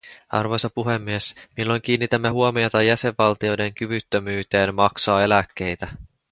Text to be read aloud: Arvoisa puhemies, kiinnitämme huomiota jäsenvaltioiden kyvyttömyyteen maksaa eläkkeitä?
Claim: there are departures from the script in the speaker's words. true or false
true